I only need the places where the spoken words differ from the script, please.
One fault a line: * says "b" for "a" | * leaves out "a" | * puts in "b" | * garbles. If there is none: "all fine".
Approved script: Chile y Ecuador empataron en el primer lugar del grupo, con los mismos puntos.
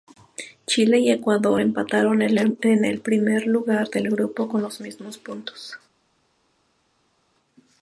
all fine